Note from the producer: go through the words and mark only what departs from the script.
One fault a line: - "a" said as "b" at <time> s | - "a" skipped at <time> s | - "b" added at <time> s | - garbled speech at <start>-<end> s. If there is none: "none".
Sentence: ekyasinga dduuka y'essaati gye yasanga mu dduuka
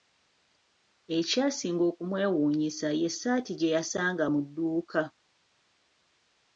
- "dduuka" said as "okumwewuunyisa" at 1.9 s